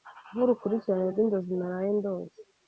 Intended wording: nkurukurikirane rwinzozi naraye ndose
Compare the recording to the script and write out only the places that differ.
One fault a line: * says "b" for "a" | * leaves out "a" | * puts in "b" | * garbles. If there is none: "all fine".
all fine